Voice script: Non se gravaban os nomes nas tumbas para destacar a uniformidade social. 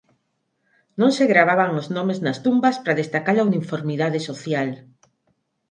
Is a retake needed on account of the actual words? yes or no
no